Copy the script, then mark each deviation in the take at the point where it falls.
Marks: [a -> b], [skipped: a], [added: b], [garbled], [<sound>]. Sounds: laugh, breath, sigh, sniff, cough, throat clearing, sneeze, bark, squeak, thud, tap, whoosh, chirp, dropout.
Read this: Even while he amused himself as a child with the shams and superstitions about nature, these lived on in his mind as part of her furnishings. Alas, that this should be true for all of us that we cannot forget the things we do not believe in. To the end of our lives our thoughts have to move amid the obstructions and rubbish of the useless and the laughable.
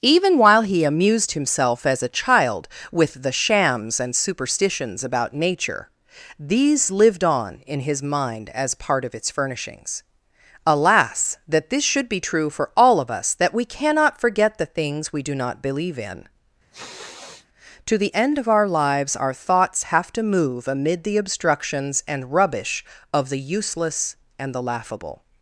Even while he amused himself as a child with the shams and superstitions about nature, these lived on in his mind as part of [her -> its] furnishings. Alas, that this should be true for all of us that we cannot forget the things we do not believe in. [sniff] To the end of our lives our thoughts have to move amid the obstructions and rubbish of the useless and the laughable.